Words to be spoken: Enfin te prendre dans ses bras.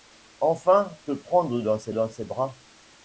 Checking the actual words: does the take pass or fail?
fail